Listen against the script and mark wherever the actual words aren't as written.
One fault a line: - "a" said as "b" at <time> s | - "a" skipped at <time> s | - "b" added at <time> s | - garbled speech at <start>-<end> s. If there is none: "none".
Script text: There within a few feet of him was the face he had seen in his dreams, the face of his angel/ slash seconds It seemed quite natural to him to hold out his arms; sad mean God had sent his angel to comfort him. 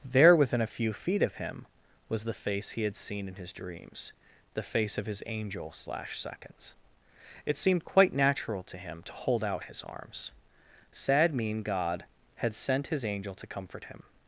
none